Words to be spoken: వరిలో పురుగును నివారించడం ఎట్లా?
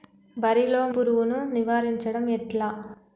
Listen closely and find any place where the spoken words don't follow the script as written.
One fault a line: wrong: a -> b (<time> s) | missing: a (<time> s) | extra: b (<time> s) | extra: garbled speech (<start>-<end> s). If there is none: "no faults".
no faults